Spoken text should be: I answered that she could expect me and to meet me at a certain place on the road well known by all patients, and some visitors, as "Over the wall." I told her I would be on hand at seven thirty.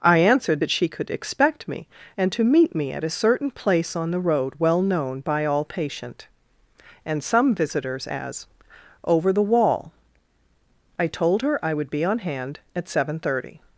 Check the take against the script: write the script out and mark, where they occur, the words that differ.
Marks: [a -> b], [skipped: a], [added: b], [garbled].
I answered that she could expect me and to meet me at a certain place on the road well known by all [patients, -> patient] and some visitors, as "Over the wall." I told her I would be on hand at seven thirty.